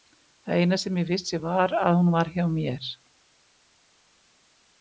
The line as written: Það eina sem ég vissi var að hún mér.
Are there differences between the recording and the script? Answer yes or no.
yes